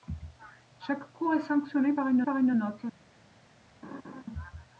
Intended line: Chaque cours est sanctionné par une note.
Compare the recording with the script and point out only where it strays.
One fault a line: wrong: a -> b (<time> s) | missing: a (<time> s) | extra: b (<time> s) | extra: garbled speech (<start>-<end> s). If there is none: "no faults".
extra: par une (2.2 s)